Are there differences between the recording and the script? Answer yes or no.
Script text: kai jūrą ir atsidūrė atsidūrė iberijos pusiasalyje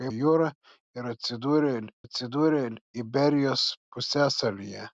no